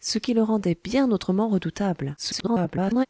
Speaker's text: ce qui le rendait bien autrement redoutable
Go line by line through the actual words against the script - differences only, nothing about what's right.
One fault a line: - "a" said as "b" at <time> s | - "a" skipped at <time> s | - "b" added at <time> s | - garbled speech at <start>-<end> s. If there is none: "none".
- garbled speech at 2.2-3.1 s